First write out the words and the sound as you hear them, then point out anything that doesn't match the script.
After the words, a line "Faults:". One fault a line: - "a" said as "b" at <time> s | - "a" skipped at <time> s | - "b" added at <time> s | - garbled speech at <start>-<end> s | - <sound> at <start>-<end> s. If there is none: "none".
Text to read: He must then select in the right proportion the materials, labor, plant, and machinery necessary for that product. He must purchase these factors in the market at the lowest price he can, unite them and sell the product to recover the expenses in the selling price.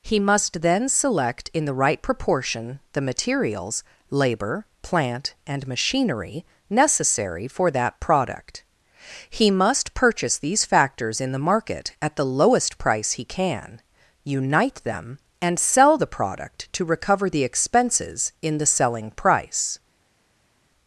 He must then select in the right proportion the materials, labor, plant, and machinery necessary for that product. He must purchase these factors in the market at the lowest price he can, unite them and sell the product to recover the expenses in the selling price.
Faults:
none